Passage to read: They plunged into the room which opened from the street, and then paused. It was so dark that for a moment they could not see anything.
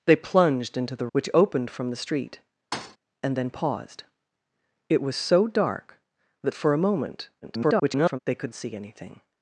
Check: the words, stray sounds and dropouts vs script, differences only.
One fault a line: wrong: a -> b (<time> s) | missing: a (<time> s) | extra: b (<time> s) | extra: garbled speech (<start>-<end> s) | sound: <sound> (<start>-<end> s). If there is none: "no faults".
missing: room (1.1 s)
sound: thud (2.7-3.0 s)
extra: garbled speech (7.4-8.2 s)
missing: not (8.5 s)